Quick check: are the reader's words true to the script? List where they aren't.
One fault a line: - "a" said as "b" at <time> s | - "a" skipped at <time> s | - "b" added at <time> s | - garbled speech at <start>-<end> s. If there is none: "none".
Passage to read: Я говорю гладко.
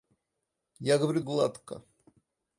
none